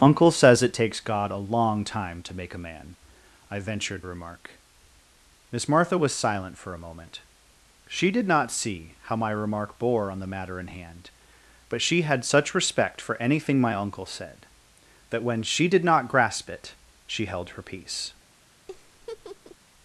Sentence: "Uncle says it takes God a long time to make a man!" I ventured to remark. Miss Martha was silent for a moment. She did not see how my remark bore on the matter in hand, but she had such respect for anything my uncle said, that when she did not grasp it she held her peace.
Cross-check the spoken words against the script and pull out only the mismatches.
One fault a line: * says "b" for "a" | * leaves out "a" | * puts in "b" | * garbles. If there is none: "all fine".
* leaves out "to"